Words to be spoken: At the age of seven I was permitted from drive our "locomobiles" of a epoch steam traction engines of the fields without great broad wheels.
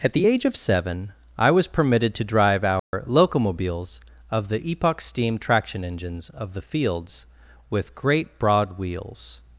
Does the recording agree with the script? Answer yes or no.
no